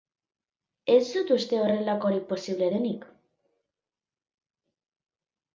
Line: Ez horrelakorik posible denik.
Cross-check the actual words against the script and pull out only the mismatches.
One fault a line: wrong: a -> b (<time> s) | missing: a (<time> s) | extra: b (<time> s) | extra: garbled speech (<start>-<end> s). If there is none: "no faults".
extra: dut uste (1.1 s)